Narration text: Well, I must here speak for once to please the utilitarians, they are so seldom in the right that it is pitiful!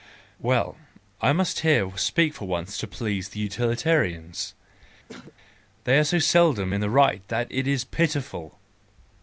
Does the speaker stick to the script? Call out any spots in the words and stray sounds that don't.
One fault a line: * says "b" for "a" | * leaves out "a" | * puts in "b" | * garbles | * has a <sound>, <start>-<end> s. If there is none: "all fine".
* has a throat clearing, 5.1-5.3 s